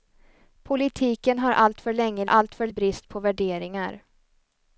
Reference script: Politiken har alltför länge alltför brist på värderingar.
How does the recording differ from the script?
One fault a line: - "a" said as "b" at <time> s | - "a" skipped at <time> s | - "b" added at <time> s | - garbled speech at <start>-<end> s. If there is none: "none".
none